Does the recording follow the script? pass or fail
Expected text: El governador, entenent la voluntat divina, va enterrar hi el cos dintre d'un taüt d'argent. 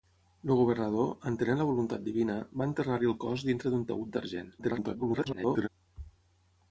fail